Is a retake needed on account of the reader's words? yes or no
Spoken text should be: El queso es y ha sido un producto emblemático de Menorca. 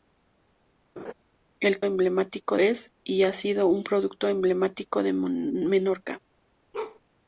yes